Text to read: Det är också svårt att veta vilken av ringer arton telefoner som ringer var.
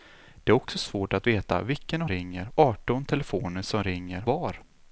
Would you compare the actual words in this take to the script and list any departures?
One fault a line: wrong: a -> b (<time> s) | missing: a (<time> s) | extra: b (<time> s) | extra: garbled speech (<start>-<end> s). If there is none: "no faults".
no faults